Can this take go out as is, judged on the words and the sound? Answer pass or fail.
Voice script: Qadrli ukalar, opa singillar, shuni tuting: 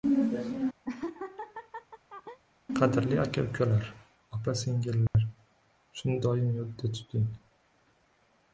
fail